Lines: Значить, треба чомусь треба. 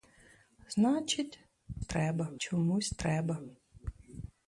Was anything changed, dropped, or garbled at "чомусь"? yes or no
no